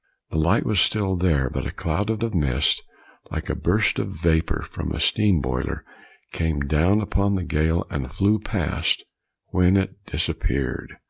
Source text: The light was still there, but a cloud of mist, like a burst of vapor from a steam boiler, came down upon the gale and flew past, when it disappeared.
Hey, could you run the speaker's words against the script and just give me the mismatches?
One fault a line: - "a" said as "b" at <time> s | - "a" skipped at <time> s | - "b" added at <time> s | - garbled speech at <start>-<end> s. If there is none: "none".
- "of" added at 2.2 s